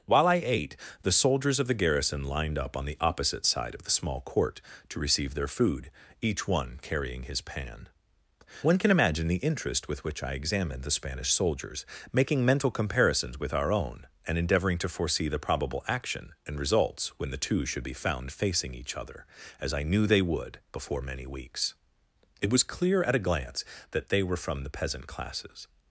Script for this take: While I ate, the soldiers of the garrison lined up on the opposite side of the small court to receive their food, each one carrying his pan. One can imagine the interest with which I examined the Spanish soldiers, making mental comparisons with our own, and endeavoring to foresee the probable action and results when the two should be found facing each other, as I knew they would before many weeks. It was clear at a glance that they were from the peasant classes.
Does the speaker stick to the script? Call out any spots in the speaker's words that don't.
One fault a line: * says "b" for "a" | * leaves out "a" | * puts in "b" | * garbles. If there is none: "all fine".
all fine